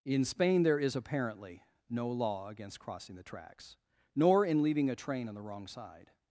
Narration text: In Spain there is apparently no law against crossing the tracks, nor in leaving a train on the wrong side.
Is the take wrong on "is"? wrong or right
right